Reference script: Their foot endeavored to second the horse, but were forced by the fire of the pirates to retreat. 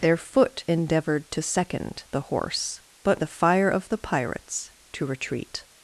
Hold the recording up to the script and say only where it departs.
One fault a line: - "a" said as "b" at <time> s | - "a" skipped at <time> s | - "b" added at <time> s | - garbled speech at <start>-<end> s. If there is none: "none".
- "were forced by" skipped at 3.2 s